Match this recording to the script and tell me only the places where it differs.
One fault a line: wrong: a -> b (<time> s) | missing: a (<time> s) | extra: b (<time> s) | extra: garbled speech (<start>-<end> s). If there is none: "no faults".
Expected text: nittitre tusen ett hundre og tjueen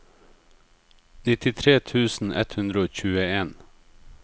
no faults